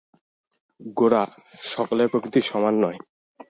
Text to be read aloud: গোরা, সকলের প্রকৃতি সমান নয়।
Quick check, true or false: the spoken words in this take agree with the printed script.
true